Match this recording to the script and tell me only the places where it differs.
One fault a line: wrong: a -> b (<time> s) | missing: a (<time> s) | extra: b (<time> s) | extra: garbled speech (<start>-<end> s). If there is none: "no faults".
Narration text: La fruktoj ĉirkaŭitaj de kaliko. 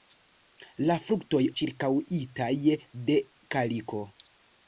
no faults